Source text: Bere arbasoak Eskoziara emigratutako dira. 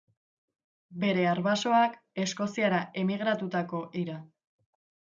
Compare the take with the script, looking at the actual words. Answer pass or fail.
pass